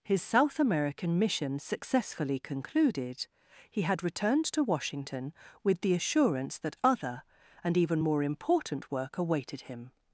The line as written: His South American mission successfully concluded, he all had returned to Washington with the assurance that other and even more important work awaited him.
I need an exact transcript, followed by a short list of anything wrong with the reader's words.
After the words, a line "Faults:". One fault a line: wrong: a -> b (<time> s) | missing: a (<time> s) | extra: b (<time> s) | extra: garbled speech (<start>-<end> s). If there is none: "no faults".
His South American mission successfully concluded, he had returned to Washington with the assurance that other and even more important work awaited him.
Faults:
missing: all (3.8 s)